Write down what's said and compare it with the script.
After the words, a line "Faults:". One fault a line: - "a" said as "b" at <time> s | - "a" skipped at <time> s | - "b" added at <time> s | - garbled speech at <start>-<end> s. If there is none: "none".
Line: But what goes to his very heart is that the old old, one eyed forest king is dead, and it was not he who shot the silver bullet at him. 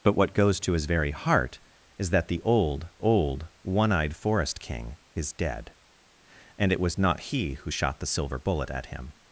But what goes to his very heart is that the old old, one eyed forest king is dead, and it was not he who shot the silver bullet at him.
Faults:
none